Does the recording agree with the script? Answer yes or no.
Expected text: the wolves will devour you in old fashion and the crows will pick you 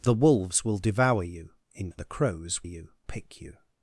no